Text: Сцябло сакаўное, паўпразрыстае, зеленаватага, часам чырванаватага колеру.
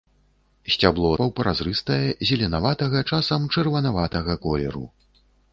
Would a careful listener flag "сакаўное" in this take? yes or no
yes